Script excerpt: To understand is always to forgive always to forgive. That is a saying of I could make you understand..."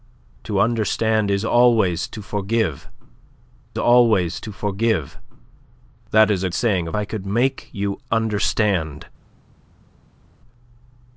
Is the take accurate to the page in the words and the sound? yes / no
yes